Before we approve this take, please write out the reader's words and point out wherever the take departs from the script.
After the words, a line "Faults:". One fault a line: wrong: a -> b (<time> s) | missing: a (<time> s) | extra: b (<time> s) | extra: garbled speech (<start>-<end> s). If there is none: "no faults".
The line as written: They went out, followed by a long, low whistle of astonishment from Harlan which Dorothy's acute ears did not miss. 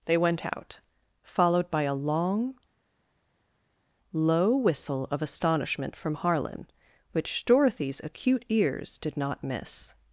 They went out, followed by a long, low whistle of astonishment from Harlan which Dorothy's acute ears did not miss.
Faults:
no faults